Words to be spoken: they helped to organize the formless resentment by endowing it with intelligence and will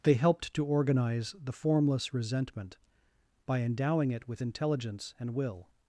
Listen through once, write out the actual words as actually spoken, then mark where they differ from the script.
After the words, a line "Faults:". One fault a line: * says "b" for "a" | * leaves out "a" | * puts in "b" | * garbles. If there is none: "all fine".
they helped to organize the formless resentment by endowing it with intelligence and will
Faults:
all fine